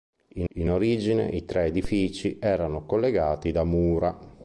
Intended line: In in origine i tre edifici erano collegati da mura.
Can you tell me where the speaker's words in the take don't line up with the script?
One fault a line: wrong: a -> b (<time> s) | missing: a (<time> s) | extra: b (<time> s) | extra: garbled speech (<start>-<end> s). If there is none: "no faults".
no faults